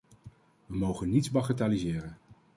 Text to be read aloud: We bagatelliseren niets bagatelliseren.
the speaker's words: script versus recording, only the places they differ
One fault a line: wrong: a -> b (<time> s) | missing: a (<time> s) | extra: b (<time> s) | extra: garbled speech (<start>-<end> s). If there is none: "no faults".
wrong: bagatelliseren -> mogen (0.8 s)